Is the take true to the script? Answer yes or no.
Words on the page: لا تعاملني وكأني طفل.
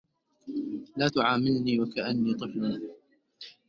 yes